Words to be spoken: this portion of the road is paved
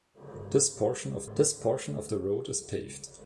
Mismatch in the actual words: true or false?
true